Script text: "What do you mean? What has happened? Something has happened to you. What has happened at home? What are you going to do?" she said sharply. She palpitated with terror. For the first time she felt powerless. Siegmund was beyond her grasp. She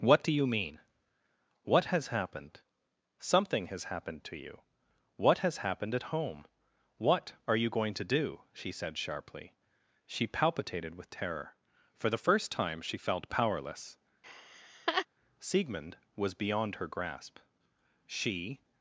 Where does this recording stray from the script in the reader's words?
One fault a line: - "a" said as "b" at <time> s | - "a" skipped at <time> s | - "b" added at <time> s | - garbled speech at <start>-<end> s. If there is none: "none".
none